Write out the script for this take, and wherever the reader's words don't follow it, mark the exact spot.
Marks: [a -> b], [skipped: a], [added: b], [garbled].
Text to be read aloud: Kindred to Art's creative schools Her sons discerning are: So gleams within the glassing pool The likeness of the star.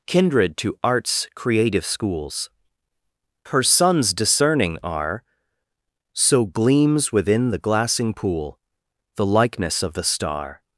Kindred to Art's creative schools Her sons discerning are: So gleams within the glassing pool The likeness of the star.